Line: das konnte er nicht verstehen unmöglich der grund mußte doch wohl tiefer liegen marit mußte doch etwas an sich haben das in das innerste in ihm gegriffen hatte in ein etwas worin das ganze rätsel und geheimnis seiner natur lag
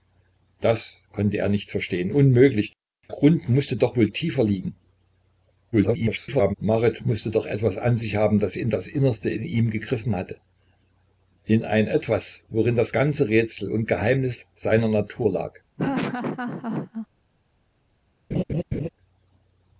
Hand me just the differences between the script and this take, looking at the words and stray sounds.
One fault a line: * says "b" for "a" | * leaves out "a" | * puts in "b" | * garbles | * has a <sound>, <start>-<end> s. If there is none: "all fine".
* leaves out "der"
* garbles
* has a laugh, 15.8-17.1 s
* has a laugh, 18.3-18.9 s